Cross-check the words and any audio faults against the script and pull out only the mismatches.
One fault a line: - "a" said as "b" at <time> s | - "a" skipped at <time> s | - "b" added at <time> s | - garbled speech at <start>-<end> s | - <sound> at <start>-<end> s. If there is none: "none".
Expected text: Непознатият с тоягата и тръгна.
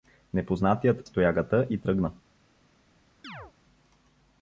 - chirp at 3.2-3.5 s